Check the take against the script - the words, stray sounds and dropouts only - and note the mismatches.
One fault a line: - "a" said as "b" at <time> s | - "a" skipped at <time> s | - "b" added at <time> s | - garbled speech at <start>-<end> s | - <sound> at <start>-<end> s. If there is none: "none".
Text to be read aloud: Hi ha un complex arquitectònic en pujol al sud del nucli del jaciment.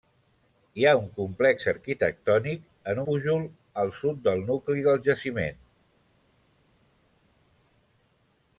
none